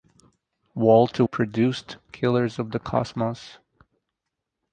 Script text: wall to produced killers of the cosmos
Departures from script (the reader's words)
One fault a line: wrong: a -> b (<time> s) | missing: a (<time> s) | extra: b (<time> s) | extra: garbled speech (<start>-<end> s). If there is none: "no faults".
no faults